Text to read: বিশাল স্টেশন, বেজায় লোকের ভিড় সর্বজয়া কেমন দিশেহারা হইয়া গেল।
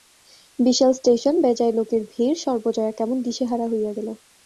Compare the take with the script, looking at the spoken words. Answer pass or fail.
pass